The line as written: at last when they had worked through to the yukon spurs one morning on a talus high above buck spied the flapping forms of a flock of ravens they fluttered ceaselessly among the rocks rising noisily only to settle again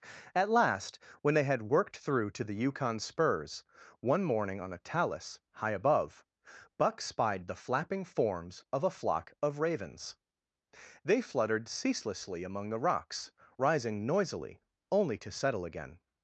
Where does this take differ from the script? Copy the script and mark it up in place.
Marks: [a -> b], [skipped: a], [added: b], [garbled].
at last when they had worked through to the yukon spurs one morning on a talus high above buck spied the flapping forms of a flock of ravens they fluttered ceaselessly among the rocks rising noisily only to settle again